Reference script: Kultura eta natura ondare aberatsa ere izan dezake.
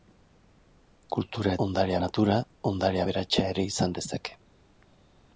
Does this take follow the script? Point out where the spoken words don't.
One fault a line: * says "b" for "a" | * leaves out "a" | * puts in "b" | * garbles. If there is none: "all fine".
* says "ondare" for "eta"